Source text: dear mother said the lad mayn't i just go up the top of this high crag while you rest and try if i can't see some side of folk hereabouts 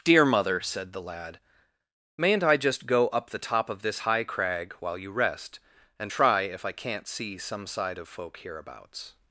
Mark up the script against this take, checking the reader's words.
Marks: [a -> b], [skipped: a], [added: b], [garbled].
dear mother said the lad mayn't i just go up the top of this high crag while you rest and try if i can't see some side of folk hereabouts